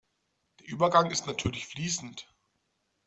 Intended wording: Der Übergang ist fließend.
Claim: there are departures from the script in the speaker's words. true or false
true